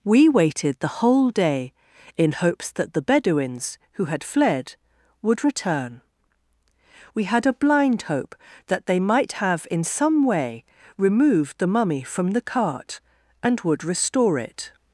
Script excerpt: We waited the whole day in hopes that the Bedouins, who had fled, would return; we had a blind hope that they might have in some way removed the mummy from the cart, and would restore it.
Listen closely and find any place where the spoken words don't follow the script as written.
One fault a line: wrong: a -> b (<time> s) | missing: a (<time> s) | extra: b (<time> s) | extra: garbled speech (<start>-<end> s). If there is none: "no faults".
no faults